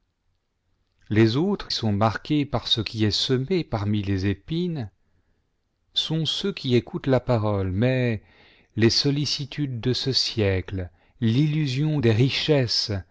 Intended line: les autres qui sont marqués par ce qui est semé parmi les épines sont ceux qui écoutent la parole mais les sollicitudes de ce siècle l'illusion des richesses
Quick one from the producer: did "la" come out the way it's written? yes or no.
yes